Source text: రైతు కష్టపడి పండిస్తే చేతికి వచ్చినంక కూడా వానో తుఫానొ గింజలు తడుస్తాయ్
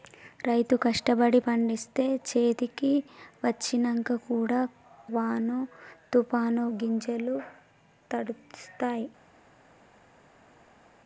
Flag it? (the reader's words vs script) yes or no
no